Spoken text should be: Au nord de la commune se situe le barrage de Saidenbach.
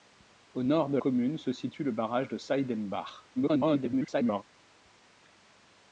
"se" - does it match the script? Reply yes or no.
yes